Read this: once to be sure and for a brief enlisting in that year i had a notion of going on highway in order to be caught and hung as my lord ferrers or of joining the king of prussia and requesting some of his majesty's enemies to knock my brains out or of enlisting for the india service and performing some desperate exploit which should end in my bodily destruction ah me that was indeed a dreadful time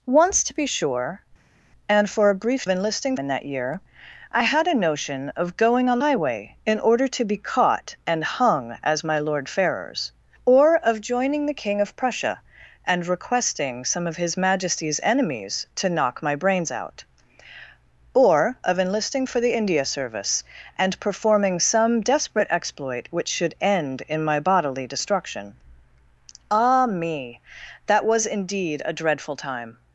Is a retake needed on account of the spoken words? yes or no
no